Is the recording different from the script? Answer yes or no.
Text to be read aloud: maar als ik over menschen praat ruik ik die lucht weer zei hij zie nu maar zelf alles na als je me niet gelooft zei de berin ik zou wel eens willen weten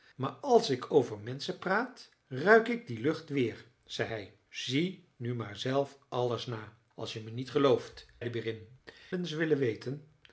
yes